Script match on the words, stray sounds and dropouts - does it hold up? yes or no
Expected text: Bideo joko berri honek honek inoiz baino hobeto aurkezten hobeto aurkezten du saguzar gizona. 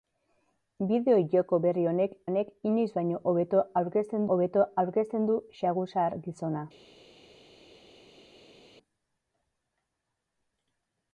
yes